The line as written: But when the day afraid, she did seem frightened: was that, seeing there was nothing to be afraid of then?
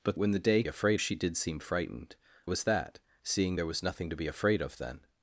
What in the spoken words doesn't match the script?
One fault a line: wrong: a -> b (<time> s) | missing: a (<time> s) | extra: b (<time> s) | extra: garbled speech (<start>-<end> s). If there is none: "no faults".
no faults